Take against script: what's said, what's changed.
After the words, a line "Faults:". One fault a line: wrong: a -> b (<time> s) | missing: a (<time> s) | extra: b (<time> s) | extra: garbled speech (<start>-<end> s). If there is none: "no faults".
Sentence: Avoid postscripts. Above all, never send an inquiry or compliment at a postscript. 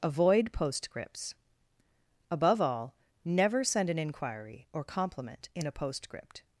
Avoid postscripts. Above all, never send an inquiry or compliment in a postscript.
Faults:
wrong: at -> in (5.5 s)